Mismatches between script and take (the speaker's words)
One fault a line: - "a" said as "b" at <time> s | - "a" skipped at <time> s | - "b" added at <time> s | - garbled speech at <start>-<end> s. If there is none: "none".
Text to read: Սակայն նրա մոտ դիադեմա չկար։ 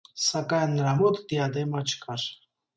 none